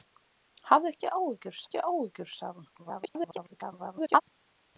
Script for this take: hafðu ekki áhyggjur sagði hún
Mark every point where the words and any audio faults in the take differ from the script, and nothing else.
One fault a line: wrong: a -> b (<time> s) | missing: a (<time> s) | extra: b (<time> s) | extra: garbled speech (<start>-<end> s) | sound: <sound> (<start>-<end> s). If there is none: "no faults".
extra: ekki áhyggjur (1.6 s)
extra: garbled speech (2.8-4.2 s)